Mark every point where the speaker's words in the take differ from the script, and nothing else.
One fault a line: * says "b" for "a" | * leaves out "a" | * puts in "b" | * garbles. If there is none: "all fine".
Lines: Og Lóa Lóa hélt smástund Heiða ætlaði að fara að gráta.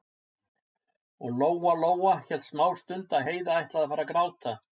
* puts in "að"